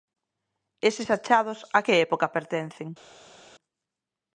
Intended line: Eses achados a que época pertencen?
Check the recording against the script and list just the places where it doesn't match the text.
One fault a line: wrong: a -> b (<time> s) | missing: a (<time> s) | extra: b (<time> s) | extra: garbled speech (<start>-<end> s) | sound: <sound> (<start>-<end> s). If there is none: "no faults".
no faults